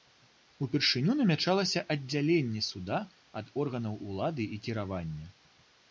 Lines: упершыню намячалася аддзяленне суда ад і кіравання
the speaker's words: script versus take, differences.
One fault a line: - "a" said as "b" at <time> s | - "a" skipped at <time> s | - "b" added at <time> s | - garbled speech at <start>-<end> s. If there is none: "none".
- "органаў улады" added at 3.7 s